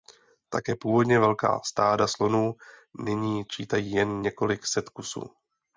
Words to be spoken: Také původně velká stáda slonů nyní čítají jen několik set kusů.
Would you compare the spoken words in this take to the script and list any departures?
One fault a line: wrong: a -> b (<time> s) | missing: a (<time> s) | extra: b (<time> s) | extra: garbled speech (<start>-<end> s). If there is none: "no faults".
no faults